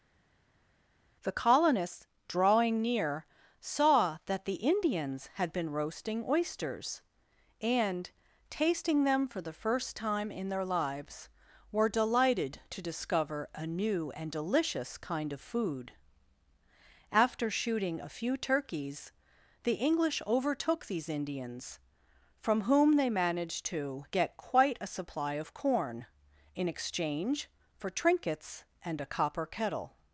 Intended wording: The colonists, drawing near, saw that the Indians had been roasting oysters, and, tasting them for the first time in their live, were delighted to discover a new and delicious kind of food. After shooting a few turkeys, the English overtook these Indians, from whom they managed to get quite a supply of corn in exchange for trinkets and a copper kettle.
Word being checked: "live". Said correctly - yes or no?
no